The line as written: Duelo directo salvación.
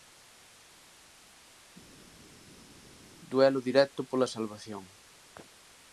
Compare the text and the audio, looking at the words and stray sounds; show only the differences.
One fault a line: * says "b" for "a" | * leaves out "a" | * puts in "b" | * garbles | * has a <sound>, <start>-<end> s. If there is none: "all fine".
* puts in "pola"